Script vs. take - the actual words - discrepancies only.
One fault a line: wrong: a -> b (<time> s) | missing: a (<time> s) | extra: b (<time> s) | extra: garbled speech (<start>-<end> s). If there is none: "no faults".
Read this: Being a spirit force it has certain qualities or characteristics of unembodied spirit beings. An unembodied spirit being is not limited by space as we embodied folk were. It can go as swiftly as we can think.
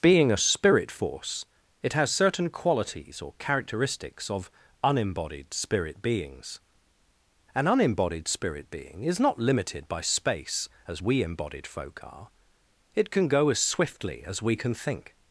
wrong: were -> are (12.0 s)